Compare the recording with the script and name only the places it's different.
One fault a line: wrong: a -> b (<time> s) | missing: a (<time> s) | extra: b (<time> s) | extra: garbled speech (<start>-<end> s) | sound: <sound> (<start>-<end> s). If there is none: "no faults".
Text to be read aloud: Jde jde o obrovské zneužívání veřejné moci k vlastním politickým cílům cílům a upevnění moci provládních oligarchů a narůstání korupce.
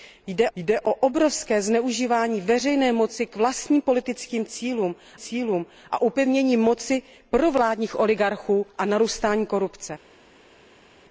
no faults